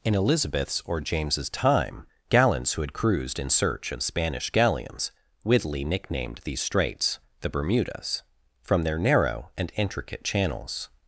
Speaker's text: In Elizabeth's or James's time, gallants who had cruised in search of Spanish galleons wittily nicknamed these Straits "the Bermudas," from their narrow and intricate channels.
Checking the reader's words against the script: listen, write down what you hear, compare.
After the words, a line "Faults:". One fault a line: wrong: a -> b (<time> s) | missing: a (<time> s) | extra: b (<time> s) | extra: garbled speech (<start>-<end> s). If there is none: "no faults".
In Elizabeth's or James's time, gallants who had cruised in search of Spanish galleons wittily nicknamed these Straits "the Bermudas," from their narrow and intricate channels.
Faults:
no faults